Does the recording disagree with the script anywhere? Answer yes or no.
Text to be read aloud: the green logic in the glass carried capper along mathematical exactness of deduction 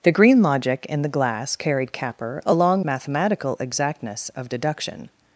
no